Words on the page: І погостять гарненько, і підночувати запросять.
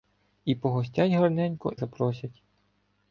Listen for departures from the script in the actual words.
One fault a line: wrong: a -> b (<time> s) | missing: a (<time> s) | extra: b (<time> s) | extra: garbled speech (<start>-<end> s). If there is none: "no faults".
missing: і підночувати (1.7 s)